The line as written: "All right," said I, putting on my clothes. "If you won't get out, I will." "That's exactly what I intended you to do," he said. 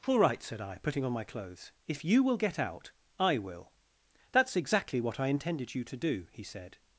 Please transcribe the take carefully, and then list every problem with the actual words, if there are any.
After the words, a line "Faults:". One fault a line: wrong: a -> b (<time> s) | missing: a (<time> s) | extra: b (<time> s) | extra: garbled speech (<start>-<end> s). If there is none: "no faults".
"All right," said I, putting on my clothes. "If you will get out, I will." "That's exactly what I intended you to do," he said.
Faults:
wrong: won't -> will (2.2 s)